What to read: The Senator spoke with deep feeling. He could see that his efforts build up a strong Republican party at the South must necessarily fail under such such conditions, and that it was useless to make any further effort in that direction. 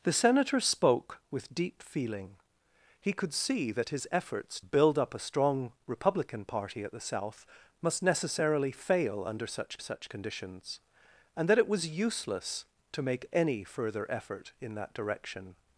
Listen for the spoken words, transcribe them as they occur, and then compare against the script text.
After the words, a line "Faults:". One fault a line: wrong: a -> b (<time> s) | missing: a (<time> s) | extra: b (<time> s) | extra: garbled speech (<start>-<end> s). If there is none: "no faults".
The Senator spoke with deep feeling. He could see that his efforts build up a strong Republican party at the South must necessarily fail under such such conditions, and that it was useless to make any further effort in that direction.
Faults:
no faults